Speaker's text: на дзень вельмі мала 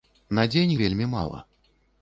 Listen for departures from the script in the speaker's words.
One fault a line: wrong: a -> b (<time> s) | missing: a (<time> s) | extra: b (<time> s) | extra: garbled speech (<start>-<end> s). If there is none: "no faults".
no faults